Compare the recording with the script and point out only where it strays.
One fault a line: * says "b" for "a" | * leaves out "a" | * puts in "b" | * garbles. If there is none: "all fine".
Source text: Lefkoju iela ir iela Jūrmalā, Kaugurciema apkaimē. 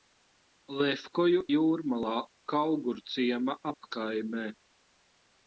* leaves out "iela ir iela"